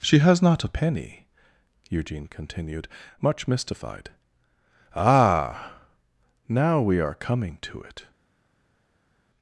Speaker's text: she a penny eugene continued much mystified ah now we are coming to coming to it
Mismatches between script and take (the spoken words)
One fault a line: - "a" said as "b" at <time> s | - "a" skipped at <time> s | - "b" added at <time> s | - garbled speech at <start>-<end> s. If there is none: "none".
- "has not" added at 0.2 s
- "coming to" skipped at 7.8 s